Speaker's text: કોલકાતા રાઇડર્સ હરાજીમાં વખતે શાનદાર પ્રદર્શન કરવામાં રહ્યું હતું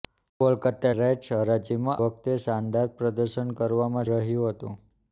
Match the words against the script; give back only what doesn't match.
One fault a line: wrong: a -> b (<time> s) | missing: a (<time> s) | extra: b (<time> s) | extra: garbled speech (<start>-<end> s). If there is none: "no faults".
no faults